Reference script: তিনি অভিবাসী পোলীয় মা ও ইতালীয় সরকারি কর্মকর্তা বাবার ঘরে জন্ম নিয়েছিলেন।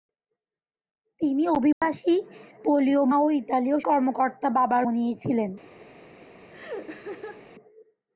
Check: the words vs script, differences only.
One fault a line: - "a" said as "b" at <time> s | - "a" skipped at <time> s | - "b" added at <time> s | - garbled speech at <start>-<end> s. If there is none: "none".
- "মা" skipped at 3.0 s
- "সরকারি" skipped at 3.8 s
- "ঘরে জন্ম" skipped at 4.8 s